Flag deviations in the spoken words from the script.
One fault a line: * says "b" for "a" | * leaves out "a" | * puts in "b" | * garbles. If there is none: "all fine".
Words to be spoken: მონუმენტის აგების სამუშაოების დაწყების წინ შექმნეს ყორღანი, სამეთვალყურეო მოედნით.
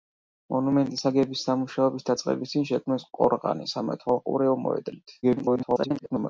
* garbles